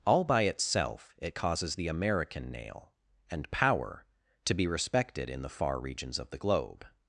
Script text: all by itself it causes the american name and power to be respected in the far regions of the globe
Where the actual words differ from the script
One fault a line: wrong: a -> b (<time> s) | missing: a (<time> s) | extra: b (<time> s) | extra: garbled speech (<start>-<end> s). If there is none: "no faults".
wrong: name -> nail (2.5 s)